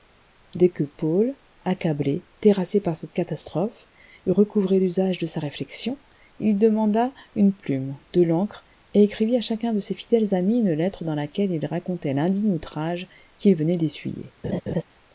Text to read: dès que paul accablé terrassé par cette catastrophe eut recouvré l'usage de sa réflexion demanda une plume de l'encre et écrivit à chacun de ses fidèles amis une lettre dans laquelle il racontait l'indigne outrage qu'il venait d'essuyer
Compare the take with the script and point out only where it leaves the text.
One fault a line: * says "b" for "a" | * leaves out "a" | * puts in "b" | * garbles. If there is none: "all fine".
* puts in "il"